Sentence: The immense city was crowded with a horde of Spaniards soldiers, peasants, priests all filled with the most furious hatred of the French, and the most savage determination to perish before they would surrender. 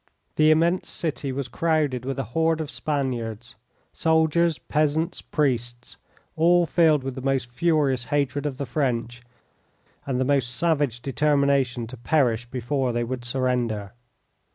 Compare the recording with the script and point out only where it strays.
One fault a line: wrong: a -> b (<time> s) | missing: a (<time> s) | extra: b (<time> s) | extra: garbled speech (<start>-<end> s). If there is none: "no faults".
no faults